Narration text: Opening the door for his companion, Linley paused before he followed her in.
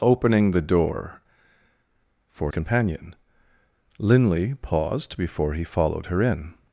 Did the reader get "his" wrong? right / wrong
wrong